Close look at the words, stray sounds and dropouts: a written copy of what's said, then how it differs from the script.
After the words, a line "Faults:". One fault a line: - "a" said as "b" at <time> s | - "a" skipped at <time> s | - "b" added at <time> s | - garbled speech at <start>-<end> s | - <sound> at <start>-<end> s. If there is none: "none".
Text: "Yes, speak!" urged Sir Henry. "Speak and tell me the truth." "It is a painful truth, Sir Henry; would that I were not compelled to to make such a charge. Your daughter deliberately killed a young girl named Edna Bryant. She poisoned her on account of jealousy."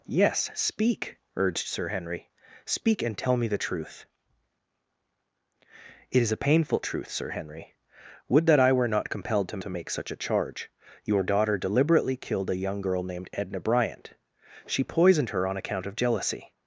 "Yes, speak!" urged Sir Henry. "Speak and tell me the truth." "It is a painful truth, Sir Henry; would that I were not compelled to to make such a charge. Your daughter deliberately killed a young girl named Edna Bryant. She poisoned her on account of jealousy."
Faults:
none